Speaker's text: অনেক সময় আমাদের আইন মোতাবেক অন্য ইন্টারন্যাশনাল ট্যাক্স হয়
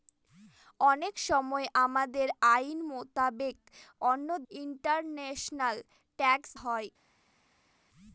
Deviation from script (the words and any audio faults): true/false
false